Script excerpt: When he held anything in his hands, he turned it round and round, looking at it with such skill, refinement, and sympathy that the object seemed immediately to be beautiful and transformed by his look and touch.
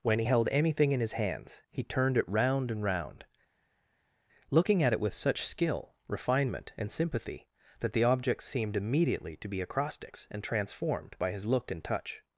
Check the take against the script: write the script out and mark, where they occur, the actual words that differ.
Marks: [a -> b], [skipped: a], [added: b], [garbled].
When he held anything in his hands, he turned it round and round, looking at it with such skill, refinement, and sympathy that the object seemed immediately to be [beautiful -> acrostics] and transformed by his look and touch.